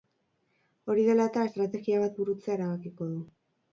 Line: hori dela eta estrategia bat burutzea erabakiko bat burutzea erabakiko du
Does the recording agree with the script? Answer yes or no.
no